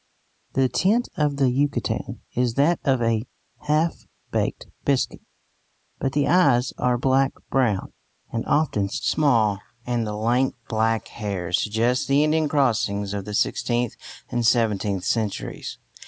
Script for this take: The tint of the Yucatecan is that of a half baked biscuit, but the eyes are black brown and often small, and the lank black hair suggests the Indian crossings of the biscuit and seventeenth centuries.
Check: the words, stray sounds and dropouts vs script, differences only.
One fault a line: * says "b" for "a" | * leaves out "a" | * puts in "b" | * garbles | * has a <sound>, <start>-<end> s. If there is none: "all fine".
* says "sixteenth" for "biscuit"